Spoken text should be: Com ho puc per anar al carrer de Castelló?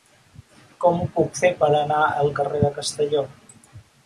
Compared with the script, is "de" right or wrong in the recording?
right